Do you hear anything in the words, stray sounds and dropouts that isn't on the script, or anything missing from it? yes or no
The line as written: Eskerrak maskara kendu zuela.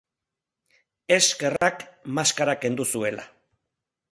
yes